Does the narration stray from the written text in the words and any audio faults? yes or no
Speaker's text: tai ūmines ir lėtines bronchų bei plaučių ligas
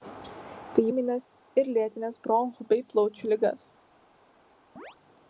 yes